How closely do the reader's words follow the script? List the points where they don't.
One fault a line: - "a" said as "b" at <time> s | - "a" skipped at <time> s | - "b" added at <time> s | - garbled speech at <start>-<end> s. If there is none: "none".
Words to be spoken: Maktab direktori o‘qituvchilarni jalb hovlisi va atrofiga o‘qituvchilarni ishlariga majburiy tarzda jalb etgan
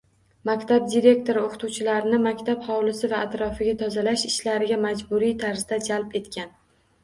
- "jalb" said as "maktab" at 2.2 s
- "o‘qituvchilarni" said as "tozalash" at 3.9 s